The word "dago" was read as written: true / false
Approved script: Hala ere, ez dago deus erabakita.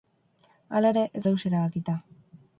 false